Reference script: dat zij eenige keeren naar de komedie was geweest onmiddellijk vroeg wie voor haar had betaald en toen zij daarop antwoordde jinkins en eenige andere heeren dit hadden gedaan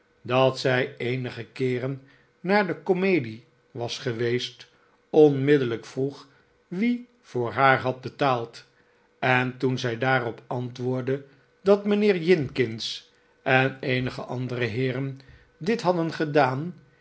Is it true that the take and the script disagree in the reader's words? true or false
true